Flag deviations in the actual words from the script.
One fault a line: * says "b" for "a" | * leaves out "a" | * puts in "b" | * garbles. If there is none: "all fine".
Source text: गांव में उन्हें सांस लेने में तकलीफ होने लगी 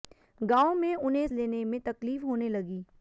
* leaves out "सांस"